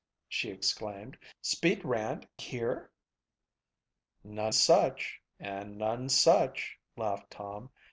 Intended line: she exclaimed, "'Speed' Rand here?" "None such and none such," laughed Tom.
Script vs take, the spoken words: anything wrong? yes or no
no